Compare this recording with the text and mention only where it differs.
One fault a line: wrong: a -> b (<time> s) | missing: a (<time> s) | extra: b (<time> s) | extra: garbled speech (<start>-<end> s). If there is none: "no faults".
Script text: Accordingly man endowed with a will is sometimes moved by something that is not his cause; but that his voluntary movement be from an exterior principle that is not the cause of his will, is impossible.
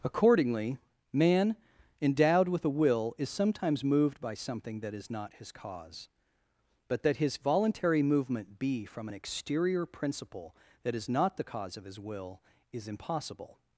no faults